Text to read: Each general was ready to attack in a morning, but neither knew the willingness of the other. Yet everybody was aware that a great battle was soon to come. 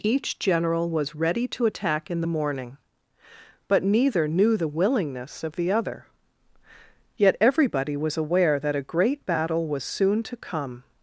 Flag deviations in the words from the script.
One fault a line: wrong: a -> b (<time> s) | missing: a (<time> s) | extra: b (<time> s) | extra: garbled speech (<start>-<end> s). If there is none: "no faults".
wrong: a -> the (2.2 s)